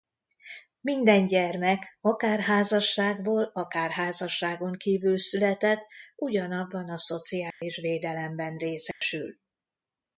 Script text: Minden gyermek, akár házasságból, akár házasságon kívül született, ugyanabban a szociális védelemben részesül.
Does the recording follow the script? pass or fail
pass